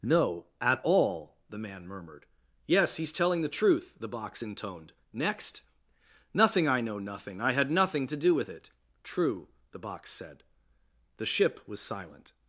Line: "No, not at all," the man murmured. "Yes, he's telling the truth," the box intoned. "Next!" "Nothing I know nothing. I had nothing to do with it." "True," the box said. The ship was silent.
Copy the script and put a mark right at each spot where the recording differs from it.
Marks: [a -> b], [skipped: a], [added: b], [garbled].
"No, [skipped: not] at all," the man murmured. "Yes, he's telling the truth," the box intoned. "Next!" "Nothing I know nothing. I had nothing to do with it." "True," the box said. The ship was silent.